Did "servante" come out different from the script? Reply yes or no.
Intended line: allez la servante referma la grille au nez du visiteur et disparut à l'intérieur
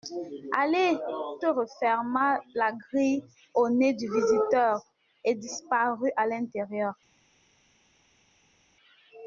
yes